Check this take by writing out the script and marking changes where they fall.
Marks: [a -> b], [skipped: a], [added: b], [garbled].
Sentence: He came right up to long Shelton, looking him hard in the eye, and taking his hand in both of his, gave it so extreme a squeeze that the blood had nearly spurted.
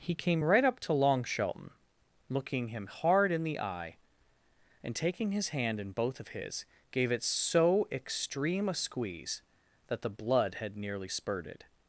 He came right up to long Shelton, looking him hard in the eye, and taking his hand in both of his, gave it so extreme a squeeze that the blood had nearly spurted.